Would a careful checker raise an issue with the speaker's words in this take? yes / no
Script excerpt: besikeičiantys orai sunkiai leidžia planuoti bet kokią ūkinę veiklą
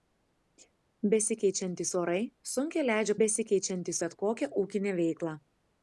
yes